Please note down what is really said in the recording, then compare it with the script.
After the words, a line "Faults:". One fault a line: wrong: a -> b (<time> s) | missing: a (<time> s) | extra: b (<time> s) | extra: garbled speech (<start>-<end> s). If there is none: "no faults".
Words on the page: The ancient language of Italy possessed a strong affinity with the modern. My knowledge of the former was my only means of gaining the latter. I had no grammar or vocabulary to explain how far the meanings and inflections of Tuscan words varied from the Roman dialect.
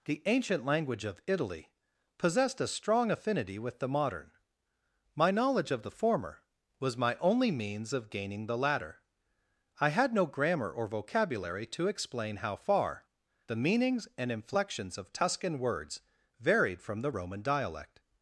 The ancient language of Italy possessed a strong affinity with the modern. My knowledge of the former was my only means of gaining the latter. I had no grammar or vocabulary to explain how far the meanings and inflections of Tuscan words varied from the Roman dialect.
Faults:
no faults